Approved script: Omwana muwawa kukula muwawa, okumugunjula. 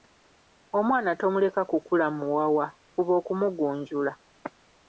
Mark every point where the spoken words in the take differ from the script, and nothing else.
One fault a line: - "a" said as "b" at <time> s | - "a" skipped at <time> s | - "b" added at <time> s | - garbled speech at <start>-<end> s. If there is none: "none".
- "muwawa" said as "tomuleka" at 1.2 s
- "fuba" added at 2.9 s